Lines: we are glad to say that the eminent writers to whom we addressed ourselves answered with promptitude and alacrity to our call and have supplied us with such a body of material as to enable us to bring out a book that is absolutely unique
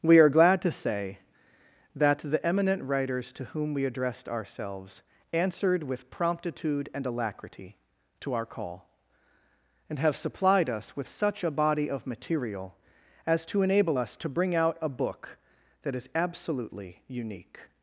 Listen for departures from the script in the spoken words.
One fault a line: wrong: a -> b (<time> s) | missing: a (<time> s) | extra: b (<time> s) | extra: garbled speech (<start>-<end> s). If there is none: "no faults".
no faults